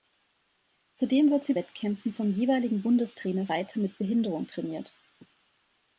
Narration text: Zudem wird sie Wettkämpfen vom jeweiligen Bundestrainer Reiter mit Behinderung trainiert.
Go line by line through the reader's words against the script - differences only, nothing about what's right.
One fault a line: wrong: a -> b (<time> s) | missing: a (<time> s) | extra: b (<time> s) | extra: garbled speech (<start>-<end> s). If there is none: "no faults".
no faults